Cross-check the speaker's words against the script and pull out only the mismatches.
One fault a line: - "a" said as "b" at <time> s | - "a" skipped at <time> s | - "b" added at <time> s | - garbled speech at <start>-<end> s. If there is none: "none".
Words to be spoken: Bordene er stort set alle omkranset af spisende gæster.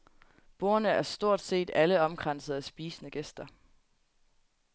none